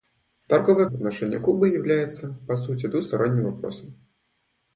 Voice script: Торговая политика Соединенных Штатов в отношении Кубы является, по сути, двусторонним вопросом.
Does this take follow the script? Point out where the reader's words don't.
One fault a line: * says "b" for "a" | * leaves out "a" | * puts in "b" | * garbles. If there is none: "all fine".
* leaves out "политика Соединенных Штатов"